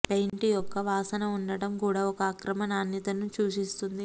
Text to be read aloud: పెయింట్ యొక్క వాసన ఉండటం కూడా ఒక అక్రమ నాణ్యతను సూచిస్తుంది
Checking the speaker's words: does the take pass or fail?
pass